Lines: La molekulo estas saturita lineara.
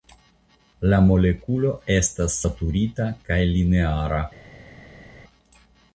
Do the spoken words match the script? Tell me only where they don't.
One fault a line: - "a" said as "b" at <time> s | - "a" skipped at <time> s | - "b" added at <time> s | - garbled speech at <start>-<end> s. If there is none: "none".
- "kaj" added at 3.3 s